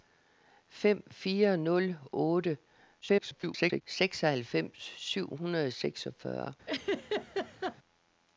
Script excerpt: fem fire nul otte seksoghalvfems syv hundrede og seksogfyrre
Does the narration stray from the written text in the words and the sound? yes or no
yes